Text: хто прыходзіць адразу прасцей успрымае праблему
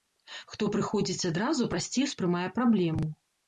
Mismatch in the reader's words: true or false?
false